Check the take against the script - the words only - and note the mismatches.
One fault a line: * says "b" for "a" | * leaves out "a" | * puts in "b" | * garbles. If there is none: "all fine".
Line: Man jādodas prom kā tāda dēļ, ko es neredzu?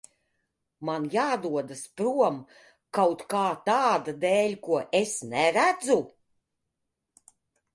* puts in "kaut"